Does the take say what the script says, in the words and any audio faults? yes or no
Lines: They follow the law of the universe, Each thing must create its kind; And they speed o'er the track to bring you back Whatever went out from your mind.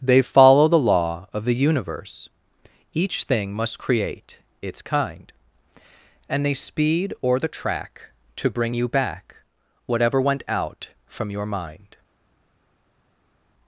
yes